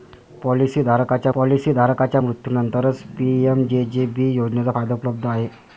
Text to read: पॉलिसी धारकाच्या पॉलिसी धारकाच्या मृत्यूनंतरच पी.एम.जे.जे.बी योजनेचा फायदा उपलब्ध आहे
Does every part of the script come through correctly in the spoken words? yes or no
yes